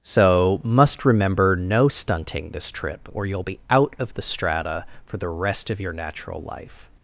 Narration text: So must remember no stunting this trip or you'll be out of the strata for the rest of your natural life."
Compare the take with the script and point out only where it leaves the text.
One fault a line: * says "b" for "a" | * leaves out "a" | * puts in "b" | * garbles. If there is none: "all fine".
all fine